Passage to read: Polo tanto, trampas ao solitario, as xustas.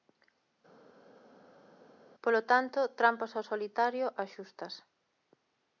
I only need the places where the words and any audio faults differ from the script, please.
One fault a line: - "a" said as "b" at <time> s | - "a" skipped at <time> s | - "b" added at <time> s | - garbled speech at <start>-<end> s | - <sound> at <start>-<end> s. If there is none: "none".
none